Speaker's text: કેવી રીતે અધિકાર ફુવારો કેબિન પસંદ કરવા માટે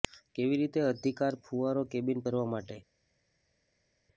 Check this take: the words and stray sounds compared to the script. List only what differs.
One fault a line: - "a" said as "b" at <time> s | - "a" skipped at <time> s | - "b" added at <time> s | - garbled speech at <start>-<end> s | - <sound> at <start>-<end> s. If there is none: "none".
- "પસંદ" skipped at 2.2 s